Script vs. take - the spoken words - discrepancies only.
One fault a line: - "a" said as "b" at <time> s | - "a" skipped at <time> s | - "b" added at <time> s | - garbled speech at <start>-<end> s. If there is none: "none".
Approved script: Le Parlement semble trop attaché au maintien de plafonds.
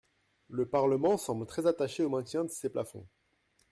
- "trop" said as "très" at 1.4 s
- "ces" added at 2.5 s